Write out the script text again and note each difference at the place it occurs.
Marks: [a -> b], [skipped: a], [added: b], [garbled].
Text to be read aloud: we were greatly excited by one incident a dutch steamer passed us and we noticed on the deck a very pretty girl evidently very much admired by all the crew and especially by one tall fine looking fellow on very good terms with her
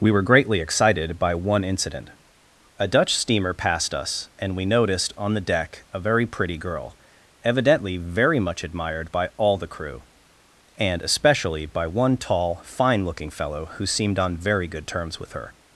we were greatly excited by one incident a dutch steamer passed us and we noticed on the deck a very pretty girl evidently very much admired by all the crew and especially by one tall fine looking fellow [added: who seemed] on very good terms with her